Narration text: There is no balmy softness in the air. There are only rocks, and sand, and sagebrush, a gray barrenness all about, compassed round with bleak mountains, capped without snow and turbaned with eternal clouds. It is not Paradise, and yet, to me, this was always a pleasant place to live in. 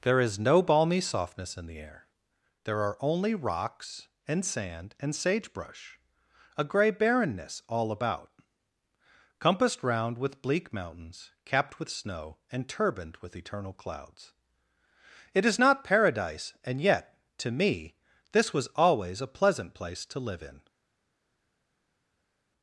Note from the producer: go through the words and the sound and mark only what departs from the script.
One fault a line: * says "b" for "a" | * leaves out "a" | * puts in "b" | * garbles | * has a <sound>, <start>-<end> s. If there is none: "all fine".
* says "with" for "without"